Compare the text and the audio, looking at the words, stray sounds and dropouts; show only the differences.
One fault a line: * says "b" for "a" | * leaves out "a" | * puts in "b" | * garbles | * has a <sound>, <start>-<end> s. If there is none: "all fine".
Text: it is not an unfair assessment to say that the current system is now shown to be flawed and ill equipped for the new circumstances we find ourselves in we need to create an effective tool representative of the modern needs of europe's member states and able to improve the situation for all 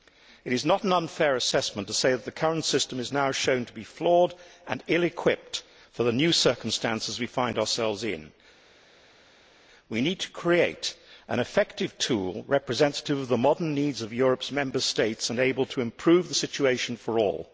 all fine